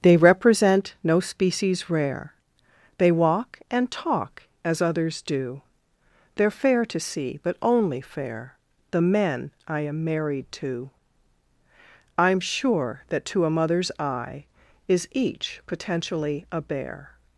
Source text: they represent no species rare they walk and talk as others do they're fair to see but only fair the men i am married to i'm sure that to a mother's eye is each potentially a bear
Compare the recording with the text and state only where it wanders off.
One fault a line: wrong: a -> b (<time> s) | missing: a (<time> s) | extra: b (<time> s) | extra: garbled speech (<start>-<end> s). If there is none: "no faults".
no faults